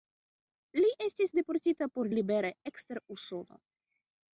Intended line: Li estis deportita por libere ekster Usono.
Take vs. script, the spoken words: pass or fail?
pass